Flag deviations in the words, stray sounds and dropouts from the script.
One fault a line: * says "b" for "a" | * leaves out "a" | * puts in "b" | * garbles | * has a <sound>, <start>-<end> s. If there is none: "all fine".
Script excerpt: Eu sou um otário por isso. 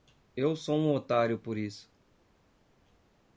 all fine